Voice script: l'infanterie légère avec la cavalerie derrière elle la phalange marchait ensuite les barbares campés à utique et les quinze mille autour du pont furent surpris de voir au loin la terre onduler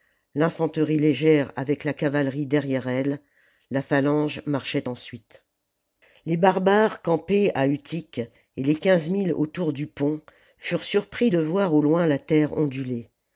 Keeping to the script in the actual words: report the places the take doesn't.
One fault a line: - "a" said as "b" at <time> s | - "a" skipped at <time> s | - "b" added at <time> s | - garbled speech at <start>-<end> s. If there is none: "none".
none